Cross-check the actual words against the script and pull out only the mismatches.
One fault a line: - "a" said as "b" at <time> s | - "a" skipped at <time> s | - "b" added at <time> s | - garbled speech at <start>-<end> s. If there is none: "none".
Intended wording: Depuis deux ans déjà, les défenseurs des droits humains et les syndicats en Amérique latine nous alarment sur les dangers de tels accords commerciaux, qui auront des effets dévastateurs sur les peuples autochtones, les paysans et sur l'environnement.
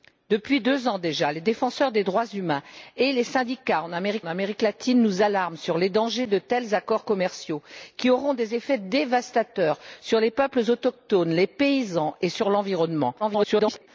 - "Amérique" added at 4.2 s
- garbled speech at 13.2-13.9 s